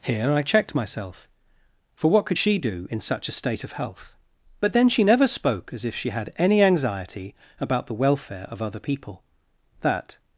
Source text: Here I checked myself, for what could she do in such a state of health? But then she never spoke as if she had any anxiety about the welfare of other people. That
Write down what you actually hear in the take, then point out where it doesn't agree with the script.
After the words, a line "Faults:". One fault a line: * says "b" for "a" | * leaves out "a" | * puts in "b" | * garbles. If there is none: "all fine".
Here I checked myself, for what could she do in such a state of health? But then she never spoke as if she had any anxiety about the welfare of other people. That
Faults:
all fine